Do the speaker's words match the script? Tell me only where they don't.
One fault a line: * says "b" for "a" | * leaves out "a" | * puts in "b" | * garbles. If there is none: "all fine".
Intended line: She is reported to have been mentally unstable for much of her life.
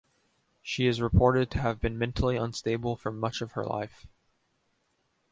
all fine